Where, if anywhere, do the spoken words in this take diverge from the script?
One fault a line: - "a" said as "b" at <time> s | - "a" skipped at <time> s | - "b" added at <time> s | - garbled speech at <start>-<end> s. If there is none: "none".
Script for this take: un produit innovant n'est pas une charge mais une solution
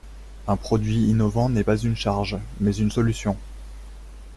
none